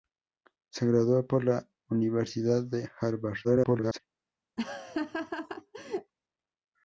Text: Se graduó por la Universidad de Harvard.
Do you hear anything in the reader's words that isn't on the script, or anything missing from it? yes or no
yes